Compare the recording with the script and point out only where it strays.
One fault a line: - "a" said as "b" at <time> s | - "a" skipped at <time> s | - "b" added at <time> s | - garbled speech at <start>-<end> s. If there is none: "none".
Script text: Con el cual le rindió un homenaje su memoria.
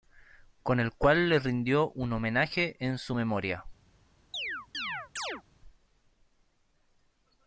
- "en" added at 2.8 s